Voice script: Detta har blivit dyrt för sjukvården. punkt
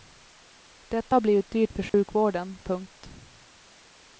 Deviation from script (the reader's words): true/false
false